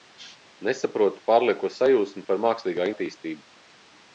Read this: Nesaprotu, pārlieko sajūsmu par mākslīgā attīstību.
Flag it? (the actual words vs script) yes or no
no